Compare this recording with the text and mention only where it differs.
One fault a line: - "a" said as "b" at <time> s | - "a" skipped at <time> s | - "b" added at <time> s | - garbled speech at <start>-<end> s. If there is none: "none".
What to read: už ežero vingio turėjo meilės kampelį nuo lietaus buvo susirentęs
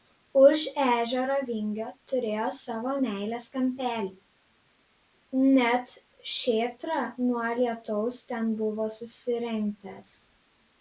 - "savo" added at 2.6 s
- "net šėtrą" added at 5.6 s
- "ten" added at 8.3 s